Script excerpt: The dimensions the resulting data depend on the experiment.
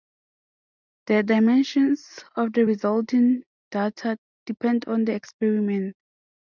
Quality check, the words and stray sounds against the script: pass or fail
fail